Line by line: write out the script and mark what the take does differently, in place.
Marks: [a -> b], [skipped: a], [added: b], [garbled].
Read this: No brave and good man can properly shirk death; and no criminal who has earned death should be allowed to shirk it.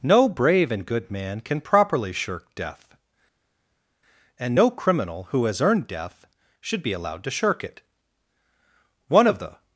No brave and good man can properly shirk death; and no criminal who has earned death should be allowed to shirk it. [added: One of the]